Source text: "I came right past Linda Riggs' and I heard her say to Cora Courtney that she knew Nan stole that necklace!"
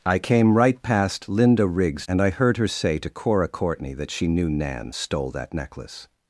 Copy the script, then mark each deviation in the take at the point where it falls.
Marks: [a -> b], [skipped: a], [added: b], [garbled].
"I came right past Linda Riggs' and I heard her say to Cora Courtney that she knew Nan stole that necklace!"